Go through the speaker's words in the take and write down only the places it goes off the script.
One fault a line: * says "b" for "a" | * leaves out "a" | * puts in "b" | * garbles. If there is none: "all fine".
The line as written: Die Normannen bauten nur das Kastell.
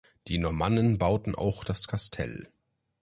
* says "auch" for "nur"